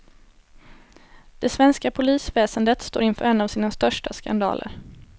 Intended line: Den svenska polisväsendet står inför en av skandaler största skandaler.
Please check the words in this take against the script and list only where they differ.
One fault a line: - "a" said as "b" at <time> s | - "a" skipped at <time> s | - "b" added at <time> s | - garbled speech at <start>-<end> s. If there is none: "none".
- "Den" said as "Det" at 1.4 s
- "skandaler" said as "sina" at 3.5 s